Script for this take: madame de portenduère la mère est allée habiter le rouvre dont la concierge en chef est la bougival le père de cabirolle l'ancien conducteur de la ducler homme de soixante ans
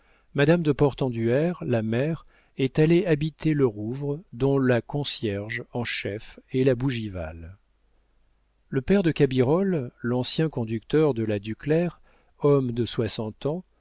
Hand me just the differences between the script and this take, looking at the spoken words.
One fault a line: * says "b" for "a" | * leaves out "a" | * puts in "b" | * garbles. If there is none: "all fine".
all fine